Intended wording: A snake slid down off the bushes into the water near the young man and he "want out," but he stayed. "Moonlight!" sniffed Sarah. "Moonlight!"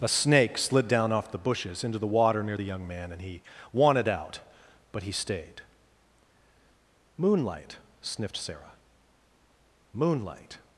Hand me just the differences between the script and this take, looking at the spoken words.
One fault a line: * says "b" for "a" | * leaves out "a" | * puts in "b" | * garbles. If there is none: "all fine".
* says "wanted" for "want"